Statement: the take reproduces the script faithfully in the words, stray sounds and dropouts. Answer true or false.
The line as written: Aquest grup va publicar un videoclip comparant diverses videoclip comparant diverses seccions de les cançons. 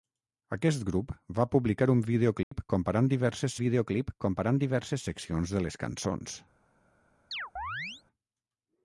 false